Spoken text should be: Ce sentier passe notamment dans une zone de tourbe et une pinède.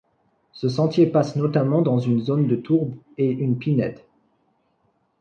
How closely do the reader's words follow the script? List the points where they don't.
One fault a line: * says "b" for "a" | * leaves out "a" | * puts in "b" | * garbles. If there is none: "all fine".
all fine